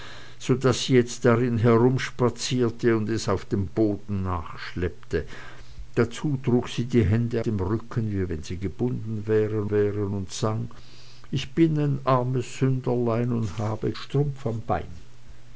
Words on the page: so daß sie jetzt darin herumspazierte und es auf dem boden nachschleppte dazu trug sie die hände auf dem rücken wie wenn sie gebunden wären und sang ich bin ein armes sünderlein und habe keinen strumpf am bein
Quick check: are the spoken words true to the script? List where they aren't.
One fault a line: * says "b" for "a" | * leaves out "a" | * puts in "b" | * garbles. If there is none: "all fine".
* leaves out "auf"
* puts in "wären"
* leaves out "keinen"